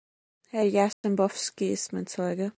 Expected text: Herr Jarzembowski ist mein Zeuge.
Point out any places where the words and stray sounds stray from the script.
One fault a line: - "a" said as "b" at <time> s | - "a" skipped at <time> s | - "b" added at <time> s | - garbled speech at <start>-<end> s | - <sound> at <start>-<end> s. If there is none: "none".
- dropout at 0.9-1.0 s